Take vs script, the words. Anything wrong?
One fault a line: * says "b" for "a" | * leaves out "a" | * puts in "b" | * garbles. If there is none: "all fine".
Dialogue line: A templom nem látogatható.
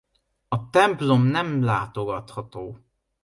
all fine